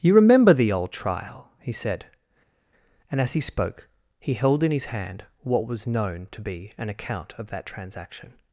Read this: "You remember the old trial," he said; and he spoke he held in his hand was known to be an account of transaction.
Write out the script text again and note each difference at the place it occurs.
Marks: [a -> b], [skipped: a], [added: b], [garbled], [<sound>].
"You remember the old trial," he said; and [added: as] he spoke he held in his hand [added: what] was known to be an account of [added: that] transaction.